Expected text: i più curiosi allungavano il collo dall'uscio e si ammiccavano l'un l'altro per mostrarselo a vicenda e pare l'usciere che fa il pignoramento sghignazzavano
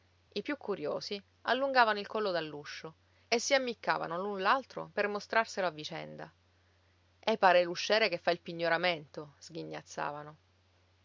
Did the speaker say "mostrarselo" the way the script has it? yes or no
yes